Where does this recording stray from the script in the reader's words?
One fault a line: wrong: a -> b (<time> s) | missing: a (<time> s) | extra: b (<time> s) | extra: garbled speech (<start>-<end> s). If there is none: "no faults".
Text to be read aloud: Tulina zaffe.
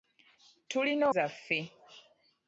no faults